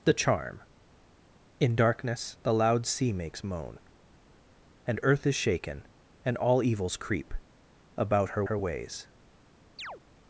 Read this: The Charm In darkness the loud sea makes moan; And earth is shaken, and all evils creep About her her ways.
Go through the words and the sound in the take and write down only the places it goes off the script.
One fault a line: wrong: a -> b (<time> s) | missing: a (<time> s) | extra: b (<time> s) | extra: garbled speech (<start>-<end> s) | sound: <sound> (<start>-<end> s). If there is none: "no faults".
sound: chirp (9.8-10.0 s)